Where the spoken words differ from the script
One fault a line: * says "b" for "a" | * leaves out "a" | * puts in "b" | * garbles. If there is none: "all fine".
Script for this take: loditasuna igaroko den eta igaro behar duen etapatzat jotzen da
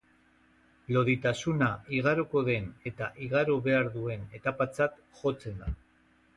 all fine